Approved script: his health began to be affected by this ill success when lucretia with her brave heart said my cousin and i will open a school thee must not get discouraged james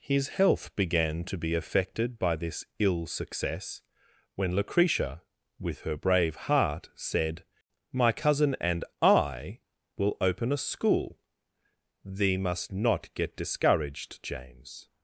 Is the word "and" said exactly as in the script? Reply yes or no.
yes